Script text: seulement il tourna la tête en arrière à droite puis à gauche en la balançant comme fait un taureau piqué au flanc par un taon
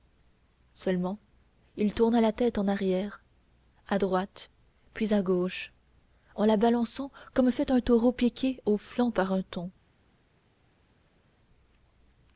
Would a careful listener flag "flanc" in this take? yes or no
no